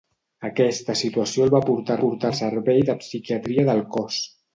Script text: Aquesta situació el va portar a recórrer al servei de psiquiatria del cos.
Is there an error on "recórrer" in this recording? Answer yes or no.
yes